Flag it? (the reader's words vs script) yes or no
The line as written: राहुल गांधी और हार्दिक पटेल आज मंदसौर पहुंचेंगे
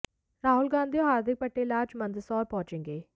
no